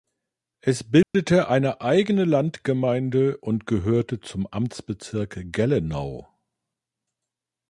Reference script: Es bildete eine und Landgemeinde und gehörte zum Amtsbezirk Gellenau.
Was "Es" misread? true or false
false